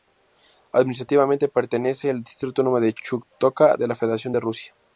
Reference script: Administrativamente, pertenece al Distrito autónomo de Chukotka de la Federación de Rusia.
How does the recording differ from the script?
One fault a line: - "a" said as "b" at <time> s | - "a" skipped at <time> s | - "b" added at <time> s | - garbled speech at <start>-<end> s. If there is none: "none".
none